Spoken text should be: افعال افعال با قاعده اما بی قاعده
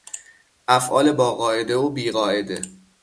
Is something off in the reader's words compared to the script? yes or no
yes